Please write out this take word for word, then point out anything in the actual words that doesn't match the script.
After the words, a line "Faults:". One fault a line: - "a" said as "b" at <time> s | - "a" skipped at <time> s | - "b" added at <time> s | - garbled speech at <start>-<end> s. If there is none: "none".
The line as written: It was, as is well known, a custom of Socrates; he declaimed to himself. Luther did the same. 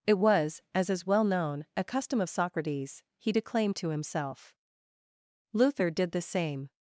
It was, as is well known, a custom of Socrates; he declaimed to himself. Luther did the same.
Faults:
none